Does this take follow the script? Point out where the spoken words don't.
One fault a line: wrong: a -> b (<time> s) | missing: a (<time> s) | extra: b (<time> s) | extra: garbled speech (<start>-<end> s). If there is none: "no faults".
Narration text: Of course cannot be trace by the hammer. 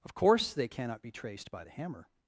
extra: they (0.5 s)
wrong: trace -> traced (1.1 s)